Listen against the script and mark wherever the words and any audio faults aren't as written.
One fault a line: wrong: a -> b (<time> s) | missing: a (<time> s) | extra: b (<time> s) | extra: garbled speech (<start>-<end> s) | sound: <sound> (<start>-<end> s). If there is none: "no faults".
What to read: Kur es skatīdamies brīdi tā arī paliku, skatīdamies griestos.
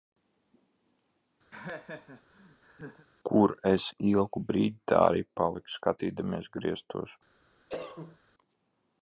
sound: laugh (1.5-3.1 s)
wrong: skatīdamies -> ilgu (4.1 s)
sound: cough (7.7-8.2 s)